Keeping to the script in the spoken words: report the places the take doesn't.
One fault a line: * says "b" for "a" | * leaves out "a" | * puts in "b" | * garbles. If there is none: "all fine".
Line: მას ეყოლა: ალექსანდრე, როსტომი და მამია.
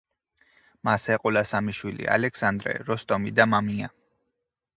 * puts in "სამი შვილი"